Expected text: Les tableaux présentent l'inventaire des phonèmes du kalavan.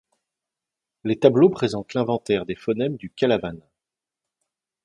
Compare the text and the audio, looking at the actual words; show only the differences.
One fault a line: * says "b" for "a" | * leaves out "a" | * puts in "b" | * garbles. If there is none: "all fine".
all fine